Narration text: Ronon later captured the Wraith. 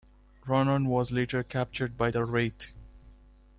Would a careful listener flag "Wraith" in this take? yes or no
no